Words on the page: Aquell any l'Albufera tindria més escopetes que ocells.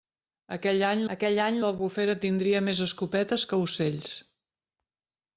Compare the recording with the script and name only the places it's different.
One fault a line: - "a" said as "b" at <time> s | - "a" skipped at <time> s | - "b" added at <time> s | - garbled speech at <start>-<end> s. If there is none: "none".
- "aquell any" added at 1.1 s